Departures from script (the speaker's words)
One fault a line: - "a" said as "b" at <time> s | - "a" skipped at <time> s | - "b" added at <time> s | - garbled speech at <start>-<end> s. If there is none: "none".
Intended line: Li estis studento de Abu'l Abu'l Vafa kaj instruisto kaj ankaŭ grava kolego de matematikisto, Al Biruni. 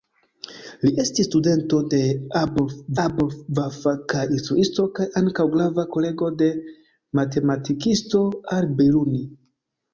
none